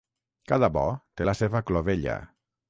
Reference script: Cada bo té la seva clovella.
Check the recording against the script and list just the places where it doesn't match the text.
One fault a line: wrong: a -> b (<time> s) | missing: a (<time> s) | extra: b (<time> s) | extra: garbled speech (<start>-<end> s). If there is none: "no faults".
no faults